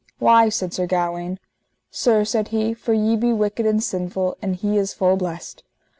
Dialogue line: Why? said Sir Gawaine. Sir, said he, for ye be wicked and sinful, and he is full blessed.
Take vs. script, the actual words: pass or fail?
pass